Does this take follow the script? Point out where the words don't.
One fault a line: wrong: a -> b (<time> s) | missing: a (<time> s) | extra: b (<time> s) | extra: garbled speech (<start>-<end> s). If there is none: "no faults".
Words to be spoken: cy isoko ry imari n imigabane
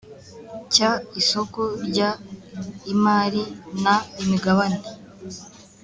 no faults